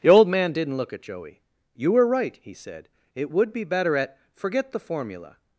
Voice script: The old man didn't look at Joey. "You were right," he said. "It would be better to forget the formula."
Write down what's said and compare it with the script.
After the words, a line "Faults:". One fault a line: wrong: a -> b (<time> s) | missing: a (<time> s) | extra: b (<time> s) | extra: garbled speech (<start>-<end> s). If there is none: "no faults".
The old man didn't look at Joey. "You were right," he said. "It would be better at forget the formula."
Faults:
wrong: to -> at (4.0 s)